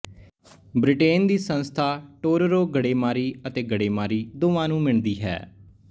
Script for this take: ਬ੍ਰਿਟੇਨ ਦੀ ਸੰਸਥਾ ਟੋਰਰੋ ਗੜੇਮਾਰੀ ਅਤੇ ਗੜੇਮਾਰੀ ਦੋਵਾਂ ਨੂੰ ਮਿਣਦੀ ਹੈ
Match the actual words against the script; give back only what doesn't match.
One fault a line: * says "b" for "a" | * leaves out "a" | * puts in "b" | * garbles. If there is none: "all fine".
all fine